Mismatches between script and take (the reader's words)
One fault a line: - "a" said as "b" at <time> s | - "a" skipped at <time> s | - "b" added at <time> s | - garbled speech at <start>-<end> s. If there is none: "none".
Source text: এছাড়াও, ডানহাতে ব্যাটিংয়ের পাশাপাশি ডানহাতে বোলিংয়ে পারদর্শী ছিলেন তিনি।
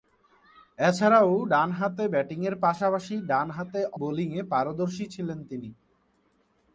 none